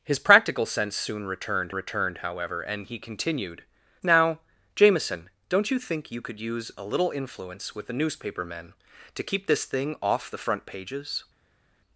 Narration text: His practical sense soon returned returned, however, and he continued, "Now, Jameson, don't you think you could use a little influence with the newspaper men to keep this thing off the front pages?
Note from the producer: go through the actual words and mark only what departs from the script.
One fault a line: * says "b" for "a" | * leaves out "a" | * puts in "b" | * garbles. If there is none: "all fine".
all fine